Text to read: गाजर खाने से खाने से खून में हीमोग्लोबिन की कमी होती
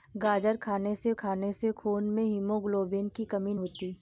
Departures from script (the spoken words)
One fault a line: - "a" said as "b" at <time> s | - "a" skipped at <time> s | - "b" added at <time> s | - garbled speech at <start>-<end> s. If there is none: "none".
none